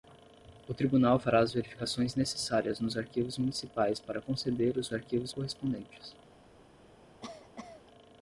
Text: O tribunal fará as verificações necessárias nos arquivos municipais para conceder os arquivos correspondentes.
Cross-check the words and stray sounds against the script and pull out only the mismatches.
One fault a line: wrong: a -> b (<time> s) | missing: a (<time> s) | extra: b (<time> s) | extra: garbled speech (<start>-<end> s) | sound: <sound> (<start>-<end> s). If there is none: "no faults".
sound: cough (7.2-7.8 s)